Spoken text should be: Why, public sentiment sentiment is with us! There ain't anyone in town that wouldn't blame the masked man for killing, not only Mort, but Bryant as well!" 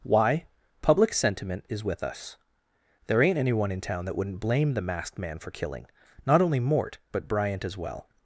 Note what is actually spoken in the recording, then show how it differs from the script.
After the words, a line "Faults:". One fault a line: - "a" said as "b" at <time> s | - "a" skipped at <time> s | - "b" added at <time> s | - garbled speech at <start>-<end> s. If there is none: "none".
Why, public sentiment is with us! There ain't anyone in town that wouldn't blame the masked man for killing, not only Mort, but Bryant as well!"
Faults:
- "sentiment" skipped at 1.6 s